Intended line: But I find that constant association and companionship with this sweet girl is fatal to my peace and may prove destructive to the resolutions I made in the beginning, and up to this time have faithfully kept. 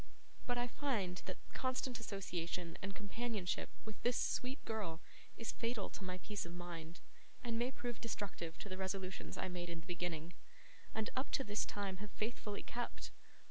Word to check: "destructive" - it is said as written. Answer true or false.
true